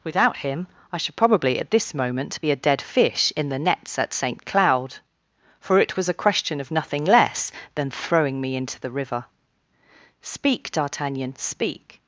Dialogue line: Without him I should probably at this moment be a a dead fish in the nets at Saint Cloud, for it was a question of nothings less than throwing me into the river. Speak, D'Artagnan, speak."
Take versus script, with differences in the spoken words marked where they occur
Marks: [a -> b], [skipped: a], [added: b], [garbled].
Without him I should probably at this moment be a [skipped: a] dead fish in the nets at Saint Cloud, for it was a question of [nothings -> nothing] less than throwing me into the river. Speak, D'Artagnan, speak."